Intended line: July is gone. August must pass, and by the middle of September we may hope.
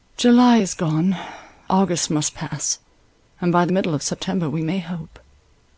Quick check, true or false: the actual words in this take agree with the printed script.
true